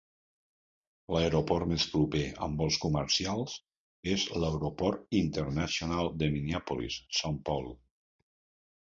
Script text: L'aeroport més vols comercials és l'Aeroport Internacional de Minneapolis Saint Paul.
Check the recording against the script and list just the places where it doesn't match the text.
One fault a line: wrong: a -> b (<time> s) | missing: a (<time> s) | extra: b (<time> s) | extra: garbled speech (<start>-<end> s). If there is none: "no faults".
extra: proper amb (2.0 s)